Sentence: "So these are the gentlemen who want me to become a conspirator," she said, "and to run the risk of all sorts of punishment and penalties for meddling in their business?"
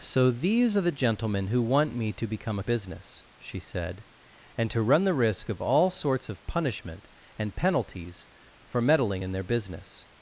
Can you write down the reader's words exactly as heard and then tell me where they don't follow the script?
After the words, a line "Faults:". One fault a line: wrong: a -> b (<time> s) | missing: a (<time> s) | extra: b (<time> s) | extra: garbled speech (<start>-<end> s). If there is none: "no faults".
"So these are the gentlemen who want me to become a business," she said, "and to run the risk of all sorts of punishment and penalties for meddling in their business?"
Faults:
wrong: conspirator -> business (2.6 s)